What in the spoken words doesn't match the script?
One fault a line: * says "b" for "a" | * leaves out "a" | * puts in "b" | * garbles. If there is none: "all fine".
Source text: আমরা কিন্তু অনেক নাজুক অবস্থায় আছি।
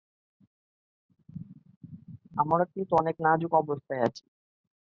all fine